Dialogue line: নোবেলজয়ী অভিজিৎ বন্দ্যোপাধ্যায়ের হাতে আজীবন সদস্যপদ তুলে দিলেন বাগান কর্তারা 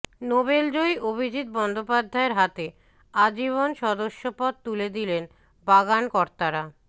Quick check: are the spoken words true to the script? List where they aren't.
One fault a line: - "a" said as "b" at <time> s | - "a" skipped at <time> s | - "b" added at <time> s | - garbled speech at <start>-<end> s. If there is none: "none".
none